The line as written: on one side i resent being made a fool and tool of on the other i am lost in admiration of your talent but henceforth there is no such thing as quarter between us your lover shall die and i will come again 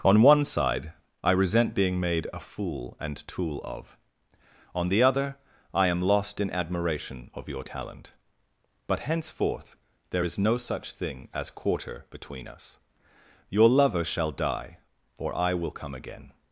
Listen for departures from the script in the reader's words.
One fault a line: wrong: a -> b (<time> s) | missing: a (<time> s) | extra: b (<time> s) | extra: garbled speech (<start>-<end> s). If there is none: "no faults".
wrong: and -> or (15.2 s)